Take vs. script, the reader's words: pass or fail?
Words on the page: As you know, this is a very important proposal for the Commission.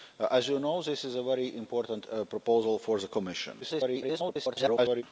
fail